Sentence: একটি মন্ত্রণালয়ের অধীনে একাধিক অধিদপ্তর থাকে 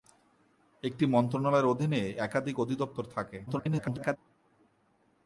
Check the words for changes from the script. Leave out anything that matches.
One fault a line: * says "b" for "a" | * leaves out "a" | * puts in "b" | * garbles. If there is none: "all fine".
* garbles